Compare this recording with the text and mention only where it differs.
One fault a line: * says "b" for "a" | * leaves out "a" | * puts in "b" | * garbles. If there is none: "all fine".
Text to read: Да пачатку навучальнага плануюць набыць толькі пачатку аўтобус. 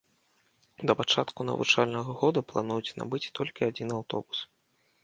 * puts in "года"
* says "адзін" for "пачатку"